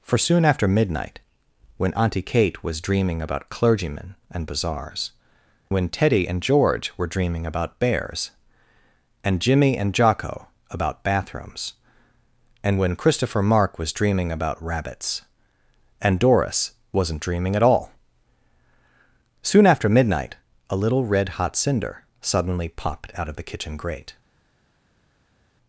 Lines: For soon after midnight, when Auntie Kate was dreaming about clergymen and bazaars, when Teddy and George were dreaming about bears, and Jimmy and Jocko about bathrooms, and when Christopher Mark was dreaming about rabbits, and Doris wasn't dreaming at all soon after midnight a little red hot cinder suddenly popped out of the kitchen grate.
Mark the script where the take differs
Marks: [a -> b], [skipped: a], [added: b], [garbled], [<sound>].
For soon after midnight, when Auntie Kate was dreaming about clergymen and bazaars, when Teddy and George were dreaming about bears, and Jimmy and Jocko about bathrooms, and when Christopher Mark was dreaming about rabbits, and Doris wasn't dreaming at all soon after midnight a little red hot cinder suddenly popped out of the kitchen grate.